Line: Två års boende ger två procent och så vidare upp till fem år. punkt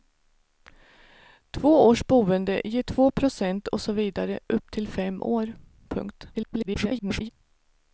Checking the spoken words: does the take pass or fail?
fail